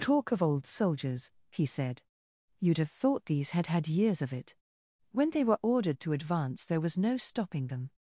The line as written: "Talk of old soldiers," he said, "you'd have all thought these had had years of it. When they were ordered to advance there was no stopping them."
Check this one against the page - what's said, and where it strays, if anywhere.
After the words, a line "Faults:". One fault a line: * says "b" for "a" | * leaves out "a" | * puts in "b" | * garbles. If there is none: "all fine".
"Talk of old soldiers," he said, "you'd have thought these had had years of it. When they were ordered to advance there was no stopping them."
Faults:
* leaves out "all"